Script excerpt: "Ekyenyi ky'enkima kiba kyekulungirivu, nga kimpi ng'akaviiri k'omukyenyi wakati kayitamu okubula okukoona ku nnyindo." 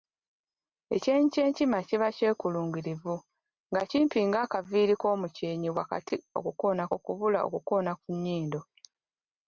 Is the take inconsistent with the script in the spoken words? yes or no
yes